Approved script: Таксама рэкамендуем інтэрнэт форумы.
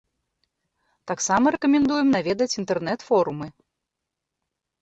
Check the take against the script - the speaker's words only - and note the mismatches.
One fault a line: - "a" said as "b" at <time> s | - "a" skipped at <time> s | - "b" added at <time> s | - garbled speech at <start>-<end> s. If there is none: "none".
- "наведаць" added at 2.1 s